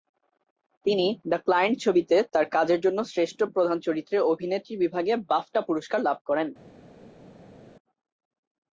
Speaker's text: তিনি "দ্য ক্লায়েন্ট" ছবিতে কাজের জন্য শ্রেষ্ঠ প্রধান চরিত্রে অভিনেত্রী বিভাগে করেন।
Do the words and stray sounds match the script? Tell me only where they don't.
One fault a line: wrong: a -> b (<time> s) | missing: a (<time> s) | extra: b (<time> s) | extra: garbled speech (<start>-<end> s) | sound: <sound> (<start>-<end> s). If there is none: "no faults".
extra: তার (2.3 s)
extra: বাফটা পুরস্কার লাভ (5.3 s)